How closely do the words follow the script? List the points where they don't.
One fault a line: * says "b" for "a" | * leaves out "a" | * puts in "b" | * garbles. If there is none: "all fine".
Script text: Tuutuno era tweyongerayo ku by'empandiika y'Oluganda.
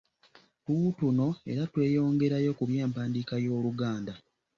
all fine